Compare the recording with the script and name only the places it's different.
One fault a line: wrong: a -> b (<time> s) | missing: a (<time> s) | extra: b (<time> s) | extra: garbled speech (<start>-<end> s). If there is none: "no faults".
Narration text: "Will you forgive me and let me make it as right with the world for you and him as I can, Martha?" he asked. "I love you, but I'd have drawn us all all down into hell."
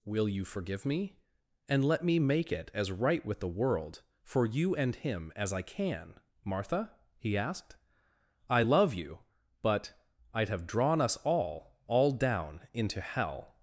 no faults